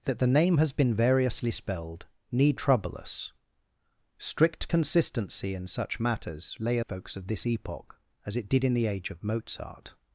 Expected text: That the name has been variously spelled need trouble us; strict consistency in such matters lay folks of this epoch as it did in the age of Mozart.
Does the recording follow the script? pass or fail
pass